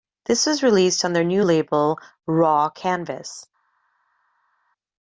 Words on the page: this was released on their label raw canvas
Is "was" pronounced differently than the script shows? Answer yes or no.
no